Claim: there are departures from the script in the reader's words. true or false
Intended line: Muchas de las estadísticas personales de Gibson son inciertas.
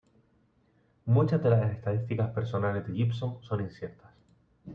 false